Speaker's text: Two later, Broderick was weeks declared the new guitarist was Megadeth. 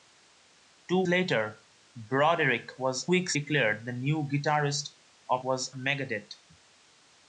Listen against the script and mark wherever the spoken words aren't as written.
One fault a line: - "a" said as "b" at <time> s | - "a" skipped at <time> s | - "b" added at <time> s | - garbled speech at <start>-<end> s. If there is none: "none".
none